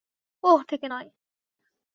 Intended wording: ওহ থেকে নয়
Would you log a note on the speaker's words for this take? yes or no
no